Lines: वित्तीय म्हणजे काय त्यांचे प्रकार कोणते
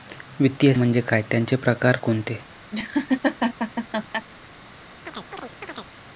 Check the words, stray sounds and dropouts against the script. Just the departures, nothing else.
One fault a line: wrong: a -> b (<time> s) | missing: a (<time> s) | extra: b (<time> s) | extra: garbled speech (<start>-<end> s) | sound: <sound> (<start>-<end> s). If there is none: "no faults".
sound: laugh (2.7-4.3 s)
sound: chirp (5.1-5.9 s)